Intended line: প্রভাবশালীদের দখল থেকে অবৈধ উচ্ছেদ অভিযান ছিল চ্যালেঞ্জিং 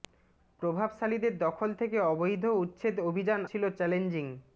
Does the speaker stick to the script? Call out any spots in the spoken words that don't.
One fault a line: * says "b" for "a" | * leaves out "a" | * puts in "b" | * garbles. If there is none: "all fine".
all fine